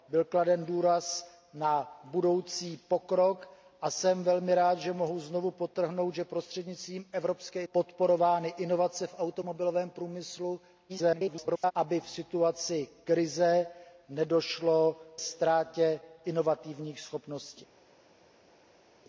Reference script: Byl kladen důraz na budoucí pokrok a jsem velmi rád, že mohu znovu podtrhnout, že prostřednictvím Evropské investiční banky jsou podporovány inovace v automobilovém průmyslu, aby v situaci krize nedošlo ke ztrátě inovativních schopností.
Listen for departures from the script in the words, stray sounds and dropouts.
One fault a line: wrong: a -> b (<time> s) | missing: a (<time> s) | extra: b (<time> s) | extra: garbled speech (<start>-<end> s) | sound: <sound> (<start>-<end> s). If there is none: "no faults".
missing: investiční banky jsou (7.6 s)
extra: garbled speech (10.9-11.7 s)
missing: ke (15.0 s)